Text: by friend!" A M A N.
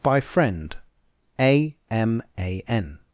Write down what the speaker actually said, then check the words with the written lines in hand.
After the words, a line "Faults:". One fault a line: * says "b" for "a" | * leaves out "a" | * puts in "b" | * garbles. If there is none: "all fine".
by friend!" A M A N.
Faults:
all fine